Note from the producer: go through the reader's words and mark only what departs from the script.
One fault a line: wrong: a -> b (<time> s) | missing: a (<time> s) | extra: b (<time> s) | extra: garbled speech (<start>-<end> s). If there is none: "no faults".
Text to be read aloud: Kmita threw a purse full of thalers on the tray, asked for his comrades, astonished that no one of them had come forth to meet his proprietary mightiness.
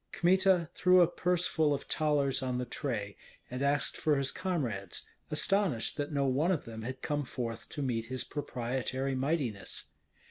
extra: and (3.5 s)